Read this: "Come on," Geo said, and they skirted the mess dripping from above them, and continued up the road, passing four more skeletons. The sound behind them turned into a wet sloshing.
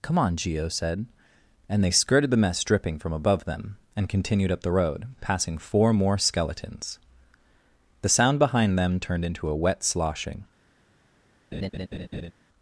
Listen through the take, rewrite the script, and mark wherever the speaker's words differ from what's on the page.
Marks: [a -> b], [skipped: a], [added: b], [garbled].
"Come on," Geo said, and they skirted the mess dripping from above them, and continued up the road, passing four more skeletons. The sound behind them turned into a wet sloshing.